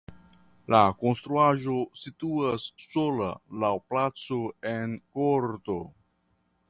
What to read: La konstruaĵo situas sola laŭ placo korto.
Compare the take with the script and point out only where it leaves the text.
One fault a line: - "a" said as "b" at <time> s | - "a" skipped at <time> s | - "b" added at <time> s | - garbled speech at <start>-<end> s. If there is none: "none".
- "en" added at 4.7 s